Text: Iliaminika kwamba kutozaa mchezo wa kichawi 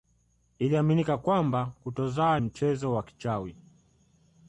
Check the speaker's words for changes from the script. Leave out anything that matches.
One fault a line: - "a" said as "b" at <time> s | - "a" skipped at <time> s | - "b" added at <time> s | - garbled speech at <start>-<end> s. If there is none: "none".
none